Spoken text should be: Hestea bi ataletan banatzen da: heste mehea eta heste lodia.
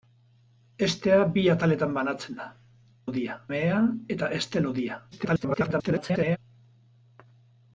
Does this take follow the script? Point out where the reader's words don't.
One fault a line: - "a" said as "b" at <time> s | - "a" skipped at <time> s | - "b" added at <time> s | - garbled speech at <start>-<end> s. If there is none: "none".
- "heste" said as "lodia" at 3.1 s
- garbled speech at 5.1-6.4 s